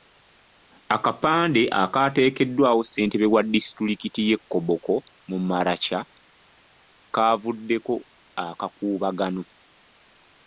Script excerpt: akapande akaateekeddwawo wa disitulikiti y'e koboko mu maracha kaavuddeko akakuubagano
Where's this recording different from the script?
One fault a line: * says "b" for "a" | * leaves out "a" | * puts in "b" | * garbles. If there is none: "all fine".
* puts in "ssentebe"